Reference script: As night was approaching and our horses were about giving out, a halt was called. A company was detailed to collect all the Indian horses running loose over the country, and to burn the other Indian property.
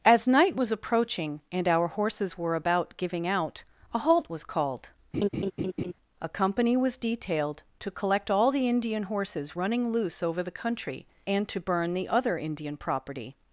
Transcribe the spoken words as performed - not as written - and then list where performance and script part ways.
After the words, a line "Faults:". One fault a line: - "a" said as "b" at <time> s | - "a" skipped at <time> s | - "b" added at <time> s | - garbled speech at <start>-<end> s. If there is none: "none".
As night was approaching and our horses were about giving out, a halt was called. A company was detailed to collect all the Indian horses running loose over the country, and to burn the other Indian property.
Faults:
none